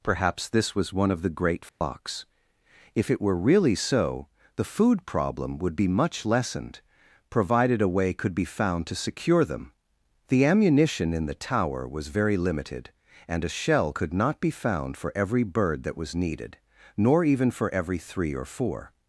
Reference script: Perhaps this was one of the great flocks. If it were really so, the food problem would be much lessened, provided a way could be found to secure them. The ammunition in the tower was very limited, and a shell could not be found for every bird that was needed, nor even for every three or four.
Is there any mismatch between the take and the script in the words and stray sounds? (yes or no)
yes